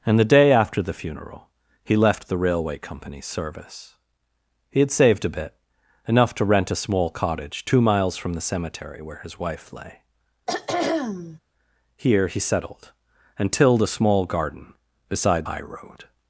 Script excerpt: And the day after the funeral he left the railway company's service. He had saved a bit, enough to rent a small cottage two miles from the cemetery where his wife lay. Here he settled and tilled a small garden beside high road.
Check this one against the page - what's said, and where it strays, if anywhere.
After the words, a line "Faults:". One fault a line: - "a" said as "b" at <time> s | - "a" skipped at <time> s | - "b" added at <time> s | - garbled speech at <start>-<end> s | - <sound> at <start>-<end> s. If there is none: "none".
And the day after the funeral he left the railway company's service. He had saved a bit, enough to rent a small cottage two miles from the cemetery where his wife lay. Here he settled and tilled a small garden beside high road.
Faults:
- throat clearing at 10.5-11.4 s